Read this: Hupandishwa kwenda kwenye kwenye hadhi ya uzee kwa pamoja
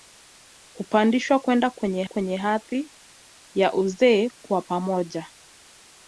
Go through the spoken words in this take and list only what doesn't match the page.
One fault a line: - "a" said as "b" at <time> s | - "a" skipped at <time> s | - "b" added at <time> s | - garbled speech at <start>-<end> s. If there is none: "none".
none